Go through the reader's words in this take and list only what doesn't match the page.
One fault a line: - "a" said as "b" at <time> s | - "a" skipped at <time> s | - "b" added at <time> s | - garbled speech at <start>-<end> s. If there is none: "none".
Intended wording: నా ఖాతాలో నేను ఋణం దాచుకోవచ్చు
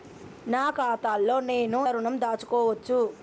none